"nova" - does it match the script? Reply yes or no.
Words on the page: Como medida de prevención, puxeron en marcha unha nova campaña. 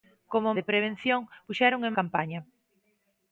no